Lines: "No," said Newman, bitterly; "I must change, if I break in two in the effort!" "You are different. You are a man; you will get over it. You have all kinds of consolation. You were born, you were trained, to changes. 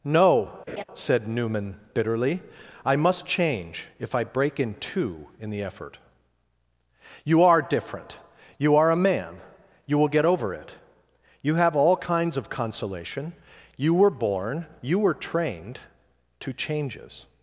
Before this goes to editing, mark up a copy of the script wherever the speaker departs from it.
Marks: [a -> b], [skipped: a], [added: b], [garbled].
"No," said Newman, bitterly; "I must change, if I break in two in the effort!" "You are different. You are a man; you will get over it. You have all kinds of consolation. You were born, you were trained, to changes.